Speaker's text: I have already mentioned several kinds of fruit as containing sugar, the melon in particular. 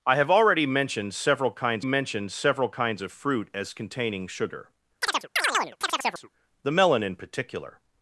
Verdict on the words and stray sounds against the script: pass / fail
fail